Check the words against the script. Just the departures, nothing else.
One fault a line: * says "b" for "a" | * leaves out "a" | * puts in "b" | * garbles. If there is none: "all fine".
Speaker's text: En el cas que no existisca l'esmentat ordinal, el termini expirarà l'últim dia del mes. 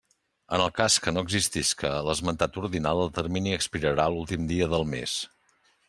all fine